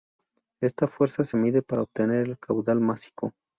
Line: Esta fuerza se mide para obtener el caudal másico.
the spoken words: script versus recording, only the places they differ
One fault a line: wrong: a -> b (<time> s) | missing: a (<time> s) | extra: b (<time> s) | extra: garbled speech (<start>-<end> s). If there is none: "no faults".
no faults